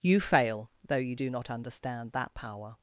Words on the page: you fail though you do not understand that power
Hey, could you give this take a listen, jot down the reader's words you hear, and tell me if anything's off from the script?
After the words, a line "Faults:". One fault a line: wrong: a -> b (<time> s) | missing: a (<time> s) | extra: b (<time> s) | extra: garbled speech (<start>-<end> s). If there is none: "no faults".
you fail though you do not understand that power
Faults:
no faults